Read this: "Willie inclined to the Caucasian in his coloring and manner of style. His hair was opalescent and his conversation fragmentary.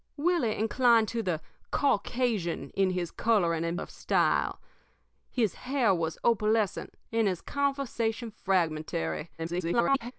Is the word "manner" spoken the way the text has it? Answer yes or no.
no